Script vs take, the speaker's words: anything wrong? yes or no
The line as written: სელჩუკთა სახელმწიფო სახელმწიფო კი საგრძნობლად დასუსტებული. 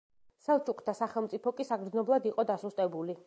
yes